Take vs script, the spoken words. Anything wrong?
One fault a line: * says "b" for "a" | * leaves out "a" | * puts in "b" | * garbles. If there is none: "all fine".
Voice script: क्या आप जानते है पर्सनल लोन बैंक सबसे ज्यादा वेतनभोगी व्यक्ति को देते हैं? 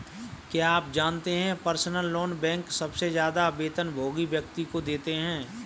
all fine